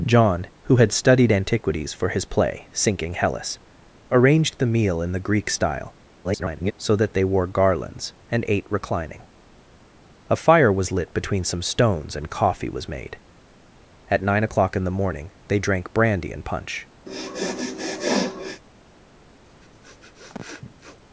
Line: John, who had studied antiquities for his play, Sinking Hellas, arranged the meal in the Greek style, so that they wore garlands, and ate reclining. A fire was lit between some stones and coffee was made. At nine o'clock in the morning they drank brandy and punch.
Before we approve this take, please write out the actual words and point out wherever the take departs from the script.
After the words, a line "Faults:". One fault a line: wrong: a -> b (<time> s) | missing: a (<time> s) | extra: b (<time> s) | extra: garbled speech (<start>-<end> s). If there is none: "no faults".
John, who had studied antiquities for his play, Sinking Hellas, arranged the meal in the Greek style, [garbled] so that they wore garlands, and ate reclining. A fire was lit between some stones and coffee was made. At nine o'clock in the morning they drank brandy and punch.
Faults:
extra: garbled speech (6.2-6.7 s)